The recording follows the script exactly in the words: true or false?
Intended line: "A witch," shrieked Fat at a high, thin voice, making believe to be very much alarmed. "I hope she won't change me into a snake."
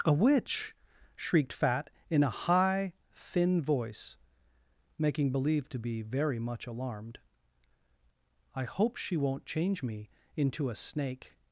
false